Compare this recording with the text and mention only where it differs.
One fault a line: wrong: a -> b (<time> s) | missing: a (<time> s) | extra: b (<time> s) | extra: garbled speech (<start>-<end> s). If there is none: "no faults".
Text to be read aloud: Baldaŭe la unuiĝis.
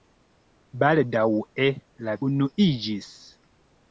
no faults